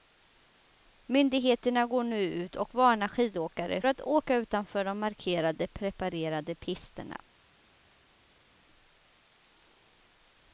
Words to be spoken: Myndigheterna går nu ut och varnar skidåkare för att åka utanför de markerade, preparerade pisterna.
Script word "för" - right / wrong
wrong